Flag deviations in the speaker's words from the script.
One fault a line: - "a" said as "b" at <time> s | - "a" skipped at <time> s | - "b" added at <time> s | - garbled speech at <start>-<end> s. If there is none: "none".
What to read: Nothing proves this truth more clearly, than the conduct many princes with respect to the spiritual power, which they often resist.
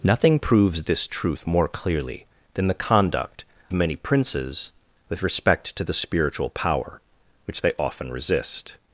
none